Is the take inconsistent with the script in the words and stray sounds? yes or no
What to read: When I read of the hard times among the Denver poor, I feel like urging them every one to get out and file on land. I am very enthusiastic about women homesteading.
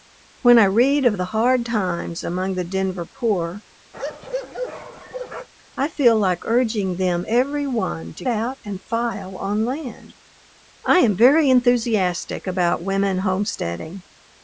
yes